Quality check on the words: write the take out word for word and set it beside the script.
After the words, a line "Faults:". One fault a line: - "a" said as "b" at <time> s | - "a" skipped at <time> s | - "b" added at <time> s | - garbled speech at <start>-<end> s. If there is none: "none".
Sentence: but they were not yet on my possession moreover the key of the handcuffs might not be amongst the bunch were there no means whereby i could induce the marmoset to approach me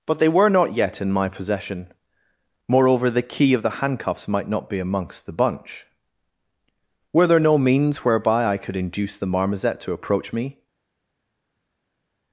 but they were not yet in my possession moreover the key of the handcuffs might not be amongst the bunch were there no means whereby i could induce the marmoset to approach me
Faults:
- "on" said as "in" at 1.0 s